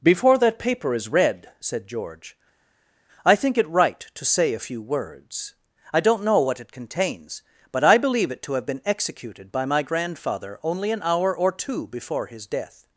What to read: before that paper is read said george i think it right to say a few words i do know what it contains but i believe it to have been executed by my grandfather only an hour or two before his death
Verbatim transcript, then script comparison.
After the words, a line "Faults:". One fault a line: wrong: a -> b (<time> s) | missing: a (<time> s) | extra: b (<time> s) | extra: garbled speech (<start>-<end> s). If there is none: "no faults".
before that paper is read said george i think it right to say a few words i don't know what it contains but i believe it to have been executed by my grandfather only an hour or two before his death
Faults:
wrong: do -> don't (6.0 s)